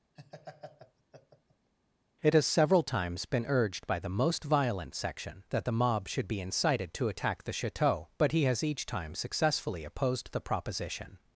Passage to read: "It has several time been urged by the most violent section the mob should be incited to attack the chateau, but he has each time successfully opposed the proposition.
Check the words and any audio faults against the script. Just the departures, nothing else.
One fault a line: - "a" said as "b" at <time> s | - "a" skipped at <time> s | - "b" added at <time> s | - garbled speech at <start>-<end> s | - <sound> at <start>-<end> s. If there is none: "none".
- laugh at 0.2-1.7 s
- "time" said as "times" at 2.8 s
- "that" added at 5.5 s